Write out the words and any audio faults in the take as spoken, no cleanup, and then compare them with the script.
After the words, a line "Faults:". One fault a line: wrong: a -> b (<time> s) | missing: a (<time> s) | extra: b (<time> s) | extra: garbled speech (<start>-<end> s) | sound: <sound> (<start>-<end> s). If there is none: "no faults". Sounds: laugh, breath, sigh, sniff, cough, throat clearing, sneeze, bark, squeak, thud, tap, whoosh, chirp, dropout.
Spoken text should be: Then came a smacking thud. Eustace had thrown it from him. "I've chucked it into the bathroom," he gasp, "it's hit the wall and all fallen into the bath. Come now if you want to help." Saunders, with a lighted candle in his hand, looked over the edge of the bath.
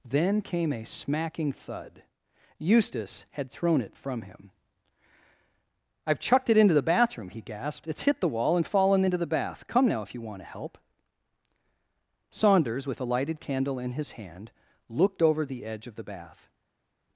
Then came a smacking thud. Eustace had thrown it from him. "I've chucked it into the bathroom," he gasped, "it's hit the wall and fallen into the bath. Come now if you want to help." Saunders, with a lighted candle in his hand, looked over the edge of the bath.
Faults:
wrong: gasp -> gasped (7.4 s)
missing: all (8.7 s)